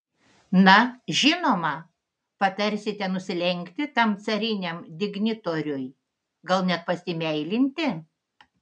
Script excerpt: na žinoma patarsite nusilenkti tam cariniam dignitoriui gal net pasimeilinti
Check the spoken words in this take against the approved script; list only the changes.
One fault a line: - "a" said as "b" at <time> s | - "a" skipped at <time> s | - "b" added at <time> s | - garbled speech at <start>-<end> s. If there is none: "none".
none